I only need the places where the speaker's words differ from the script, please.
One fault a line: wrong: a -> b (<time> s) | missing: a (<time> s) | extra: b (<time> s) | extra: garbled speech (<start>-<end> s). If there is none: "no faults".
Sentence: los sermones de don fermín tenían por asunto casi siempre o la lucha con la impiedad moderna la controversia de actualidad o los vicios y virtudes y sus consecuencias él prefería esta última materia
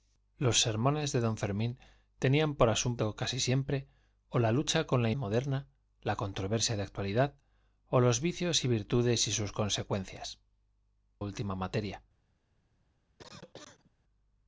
missing: impiedad (5.1 s)
missing: él prefería esta (10.4 s)